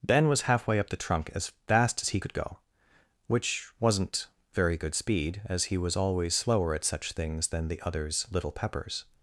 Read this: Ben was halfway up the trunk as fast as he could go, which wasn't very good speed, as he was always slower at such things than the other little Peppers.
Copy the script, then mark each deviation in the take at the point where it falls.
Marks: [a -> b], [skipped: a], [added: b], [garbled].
Ben was halfway up the trunk as fast as he could go, which wasn't very good speed, as he was always slower at such things than the [other -> others] little Peppers.